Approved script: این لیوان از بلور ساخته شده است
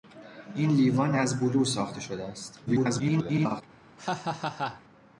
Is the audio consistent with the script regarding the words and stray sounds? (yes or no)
no